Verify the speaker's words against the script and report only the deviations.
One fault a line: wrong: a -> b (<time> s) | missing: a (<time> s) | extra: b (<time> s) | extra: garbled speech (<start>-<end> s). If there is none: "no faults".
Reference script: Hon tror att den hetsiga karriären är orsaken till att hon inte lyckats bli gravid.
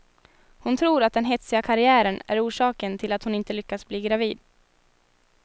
no faults